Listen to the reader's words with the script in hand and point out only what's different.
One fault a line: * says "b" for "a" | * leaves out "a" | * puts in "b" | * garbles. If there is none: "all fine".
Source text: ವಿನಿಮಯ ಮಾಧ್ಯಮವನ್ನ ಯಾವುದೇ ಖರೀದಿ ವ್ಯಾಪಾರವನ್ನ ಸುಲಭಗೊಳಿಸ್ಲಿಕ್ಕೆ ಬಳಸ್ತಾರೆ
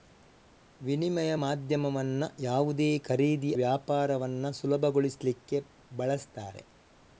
all fine